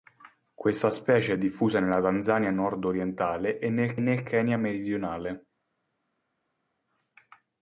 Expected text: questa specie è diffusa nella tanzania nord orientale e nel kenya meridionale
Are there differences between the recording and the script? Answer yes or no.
yes